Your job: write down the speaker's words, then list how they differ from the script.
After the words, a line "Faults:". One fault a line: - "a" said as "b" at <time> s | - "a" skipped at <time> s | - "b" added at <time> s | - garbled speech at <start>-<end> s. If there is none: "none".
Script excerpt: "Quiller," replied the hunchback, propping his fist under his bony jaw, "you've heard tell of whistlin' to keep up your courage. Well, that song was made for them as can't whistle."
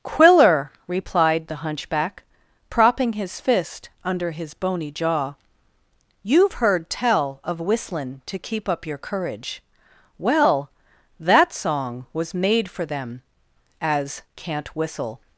"Quiller," replied the hunchback, propping his fist under his bony jaw, "you've heard tell of whistlin' to keep up your courage. Well, that song was made for them as can't whistle."
Faults:
none